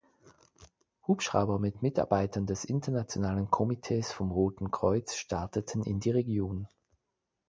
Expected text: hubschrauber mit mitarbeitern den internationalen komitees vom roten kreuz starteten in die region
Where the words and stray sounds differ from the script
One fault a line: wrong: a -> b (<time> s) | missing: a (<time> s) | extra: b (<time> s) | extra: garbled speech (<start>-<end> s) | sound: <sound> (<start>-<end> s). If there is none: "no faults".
wrong: den -> des (2.5 s)